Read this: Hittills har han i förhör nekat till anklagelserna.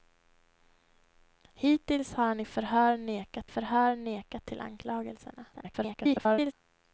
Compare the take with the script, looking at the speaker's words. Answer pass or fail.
fail